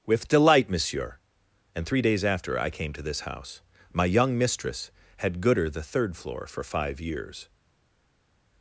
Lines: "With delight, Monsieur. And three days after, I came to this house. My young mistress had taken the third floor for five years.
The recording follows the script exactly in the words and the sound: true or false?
false